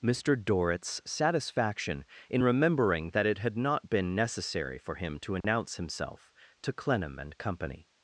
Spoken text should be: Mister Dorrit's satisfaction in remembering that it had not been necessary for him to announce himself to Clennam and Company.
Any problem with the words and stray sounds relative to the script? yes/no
yes